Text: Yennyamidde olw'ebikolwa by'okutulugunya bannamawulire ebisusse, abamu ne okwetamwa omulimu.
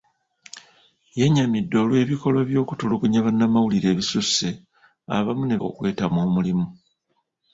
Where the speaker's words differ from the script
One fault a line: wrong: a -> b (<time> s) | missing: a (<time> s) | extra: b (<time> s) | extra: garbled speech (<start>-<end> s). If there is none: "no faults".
no faults